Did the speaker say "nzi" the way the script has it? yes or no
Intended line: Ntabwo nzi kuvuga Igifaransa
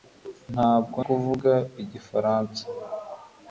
no